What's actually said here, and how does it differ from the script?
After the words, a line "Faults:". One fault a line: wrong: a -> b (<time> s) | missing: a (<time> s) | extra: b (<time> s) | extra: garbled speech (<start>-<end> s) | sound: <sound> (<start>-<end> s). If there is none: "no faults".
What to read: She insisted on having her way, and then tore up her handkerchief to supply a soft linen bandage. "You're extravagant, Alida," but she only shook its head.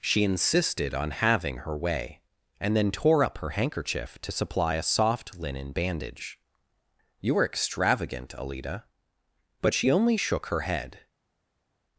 She insisted on having her way, and then tore up her handkerchief to supply a soft linen bandage. "You're extravagant, Alida," but she only shook her head.
Faults:
wrong: its -> her (10.5 s)